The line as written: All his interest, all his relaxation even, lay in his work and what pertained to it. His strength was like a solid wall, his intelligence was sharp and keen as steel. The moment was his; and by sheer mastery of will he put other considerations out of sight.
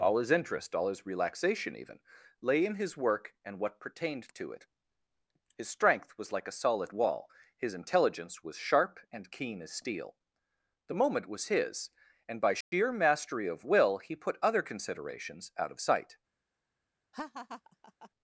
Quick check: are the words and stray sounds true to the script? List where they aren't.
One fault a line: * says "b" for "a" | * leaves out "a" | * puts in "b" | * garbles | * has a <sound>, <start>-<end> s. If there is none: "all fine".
* has a dropout, 12.6-12.7 s
* has a laugh, 17.1-18.1 s